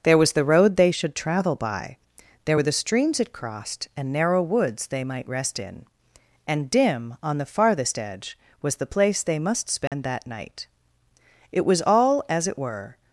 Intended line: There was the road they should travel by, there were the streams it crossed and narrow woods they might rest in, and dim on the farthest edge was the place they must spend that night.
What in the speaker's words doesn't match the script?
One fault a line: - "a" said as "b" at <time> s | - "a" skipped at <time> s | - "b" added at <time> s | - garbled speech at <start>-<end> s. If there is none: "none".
- "It was all as it were" added at 11.5 s